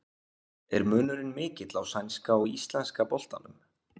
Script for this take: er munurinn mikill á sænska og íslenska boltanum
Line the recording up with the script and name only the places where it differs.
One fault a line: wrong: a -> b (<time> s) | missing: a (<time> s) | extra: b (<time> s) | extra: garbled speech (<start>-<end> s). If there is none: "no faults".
no faults